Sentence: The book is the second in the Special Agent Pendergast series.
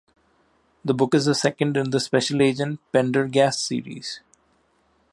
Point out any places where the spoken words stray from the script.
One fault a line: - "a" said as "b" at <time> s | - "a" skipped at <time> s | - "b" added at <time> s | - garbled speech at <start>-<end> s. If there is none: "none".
none